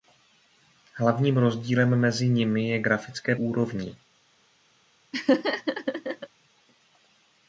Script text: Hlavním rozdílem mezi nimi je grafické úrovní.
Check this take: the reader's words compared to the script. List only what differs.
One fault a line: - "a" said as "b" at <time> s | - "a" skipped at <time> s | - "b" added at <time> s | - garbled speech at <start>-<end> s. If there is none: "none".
none